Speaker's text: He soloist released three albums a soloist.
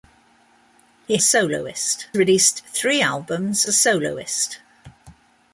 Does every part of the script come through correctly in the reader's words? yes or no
yes